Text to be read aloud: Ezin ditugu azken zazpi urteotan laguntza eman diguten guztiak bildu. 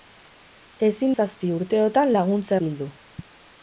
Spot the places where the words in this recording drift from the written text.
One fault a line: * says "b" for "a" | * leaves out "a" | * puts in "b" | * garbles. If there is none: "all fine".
* leaves out "ditugu azken"
* leaves out "eman diguten guztiak"